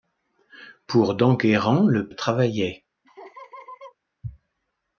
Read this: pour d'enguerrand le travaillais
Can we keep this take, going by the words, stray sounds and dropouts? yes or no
no